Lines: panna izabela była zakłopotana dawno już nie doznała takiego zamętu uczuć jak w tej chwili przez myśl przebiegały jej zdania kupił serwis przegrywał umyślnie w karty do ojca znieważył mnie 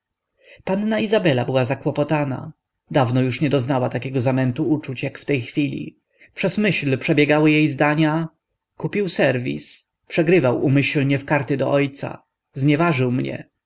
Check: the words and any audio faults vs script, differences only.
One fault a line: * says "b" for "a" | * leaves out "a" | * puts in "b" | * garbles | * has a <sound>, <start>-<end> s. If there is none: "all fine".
all fine